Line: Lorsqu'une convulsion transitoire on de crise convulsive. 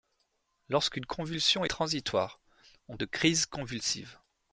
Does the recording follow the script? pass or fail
pass